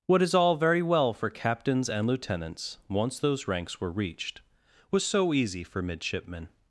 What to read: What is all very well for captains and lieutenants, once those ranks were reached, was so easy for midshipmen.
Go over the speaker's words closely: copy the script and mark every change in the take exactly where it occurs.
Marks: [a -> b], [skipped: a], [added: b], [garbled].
What is all very well for captains and lieutenants, once those ranks were reached, was so easy for midshipmen.